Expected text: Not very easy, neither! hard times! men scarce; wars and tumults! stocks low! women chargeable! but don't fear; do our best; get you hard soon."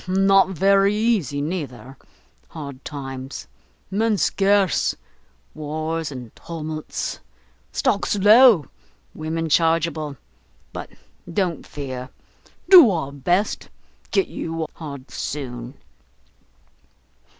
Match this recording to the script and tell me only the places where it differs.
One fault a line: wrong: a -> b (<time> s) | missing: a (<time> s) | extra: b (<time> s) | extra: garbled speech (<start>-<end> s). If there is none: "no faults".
no faults